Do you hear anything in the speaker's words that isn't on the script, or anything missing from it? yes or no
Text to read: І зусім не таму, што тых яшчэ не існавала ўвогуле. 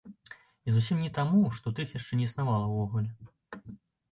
no